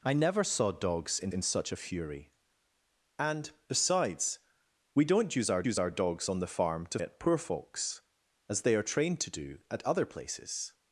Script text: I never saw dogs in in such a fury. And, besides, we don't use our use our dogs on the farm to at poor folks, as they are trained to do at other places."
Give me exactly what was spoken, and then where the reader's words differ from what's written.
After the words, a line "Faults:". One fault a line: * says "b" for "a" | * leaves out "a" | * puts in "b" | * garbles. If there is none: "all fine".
I never saw dogs in in such a fury. And, besides, we don't use our use our dogs on the farm to at poor folks, as they are trained to do at other places."
Faults:
all fine